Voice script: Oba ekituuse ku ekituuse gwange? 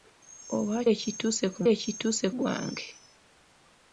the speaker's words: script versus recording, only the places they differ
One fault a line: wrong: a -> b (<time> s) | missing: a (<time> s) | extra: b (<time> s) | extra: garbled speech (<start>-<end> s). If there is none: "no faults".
no faults